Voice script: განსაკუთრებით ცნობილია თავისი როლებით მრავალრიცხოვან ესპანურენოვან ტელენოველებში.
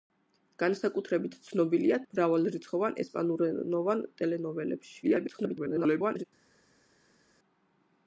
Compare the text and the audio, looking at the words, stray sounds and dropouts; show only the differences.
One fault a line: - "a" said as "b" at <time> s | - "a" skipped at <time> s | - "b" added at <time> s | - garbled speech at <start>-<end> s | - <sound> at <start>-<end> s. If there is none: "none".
- "თავისი როლებით" skipped at 2.0 s
- garbled speech at 5.0-6.3 s